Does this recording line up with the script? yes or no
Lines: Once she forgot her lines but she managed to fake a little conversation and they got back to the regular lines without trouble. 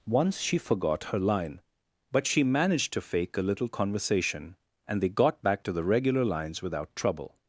no